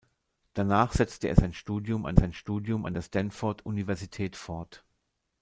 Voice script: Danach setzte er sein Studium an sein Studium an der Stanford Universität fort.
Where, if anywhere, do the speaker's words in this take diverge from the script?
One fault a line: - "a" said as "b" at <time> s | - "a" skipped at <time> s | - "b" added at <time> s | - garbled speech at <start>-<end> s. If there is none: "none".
none